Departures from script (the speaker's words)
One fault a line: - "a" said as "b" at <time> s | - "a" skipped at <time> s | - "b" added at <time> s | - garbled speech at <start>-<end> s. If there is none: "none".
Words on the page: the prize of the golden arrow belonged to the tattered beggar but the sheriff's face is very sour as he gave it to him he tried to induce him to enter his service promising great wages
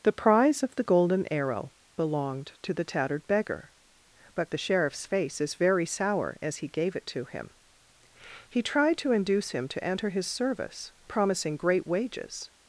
none